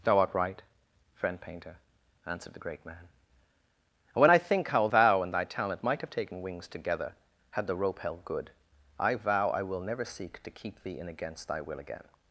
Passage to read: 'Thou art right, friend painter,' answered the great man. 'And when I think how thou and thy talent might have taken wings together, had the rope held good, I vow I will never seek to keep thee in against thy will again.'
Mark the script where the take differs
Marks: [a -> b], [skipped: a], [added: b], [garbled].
'Thou art right, friend painter,' answered the great man. 'And when I think how thou and thy talent might have taken wings together, had the rope held good, I vow I will never seek to keep thee in against thy will again.'